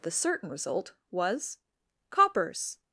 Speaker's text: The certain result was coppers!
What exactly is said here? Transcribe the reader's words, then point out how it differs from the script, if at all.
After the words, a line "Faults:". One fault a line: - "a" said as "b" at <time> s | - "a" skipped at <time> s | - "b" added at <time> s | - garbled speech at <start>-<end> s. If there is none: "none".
The certain result was coppers!
Faults:
none